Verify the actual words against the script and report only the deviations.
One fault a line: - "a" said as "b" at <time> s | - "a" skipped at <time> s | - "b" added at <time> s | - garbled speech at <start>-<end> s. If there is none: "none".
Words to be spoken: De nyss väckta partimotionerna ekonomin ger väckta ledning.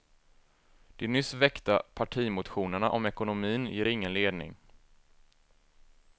- "om" added at 2.9 s
- "väckta" said as "ingen" at 3.9 s